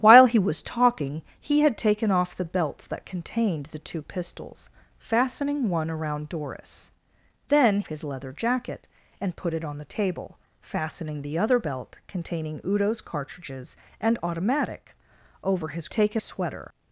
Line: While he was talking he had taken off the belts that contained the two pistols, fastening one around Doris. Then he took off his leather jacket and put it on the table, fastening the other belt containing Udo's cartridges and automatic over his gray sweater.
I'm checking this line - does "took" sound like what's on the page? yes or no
no